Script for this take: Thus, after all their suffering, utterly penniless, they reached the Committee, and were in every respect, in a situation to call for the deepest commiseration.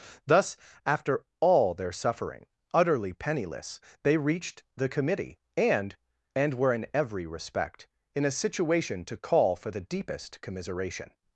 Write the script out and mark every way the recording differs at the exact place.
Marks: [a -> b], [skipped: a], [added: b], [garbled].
Thus, after all their suffering, utterly penniless, they reached the Committee, and [added: and] were in every respect, in a situation to call for the deepest commiseration.